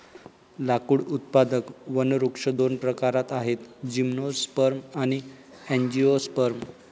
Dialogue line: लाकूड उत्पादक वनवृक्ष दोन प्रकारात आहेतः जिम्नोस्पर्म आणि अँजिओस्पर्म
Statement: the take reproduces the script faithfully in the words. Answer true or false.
true